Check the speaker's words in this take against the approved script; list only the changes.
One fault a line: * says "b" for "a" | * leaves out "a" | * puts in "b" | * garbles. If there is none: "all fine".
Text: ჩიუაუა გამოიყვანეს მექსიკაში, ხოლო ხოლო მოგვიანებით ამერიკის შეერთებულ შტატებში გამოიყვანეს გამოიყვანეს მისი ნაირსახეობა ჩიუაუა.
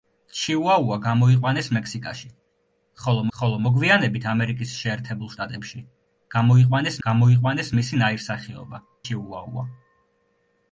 all fine